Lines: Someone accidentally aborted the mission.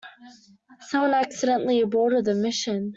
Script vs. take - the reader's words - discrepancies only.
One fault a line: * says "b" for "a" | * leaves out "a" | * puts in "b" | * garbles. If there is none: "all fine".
all fine